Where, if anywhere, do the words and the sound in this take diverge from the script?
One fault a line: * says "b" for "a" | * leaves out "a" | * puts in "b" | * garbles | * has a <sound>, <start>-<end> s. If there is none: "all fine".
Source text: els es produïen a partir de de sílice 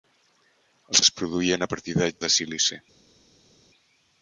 all fine